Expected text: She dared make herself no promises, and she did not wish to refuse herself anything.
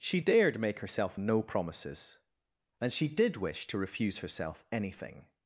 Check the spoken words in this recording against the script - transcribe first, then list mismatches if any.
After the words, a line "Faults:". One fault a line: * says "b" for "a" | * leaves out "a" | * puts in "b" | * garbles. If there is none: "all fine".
She dared make herself no promises, and she did wish to refuse herself anything.
Faults:
* leaves out "not"